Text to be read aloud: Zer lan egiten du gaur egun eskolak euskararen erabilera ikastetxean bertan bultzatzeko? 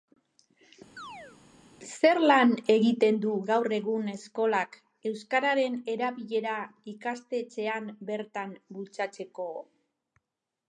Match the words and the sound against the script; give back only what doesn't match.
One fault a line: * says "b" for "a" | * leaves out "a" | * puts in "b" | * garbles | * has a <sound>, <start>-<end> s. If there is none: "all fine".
* has a chirp, 1.0-1.4 s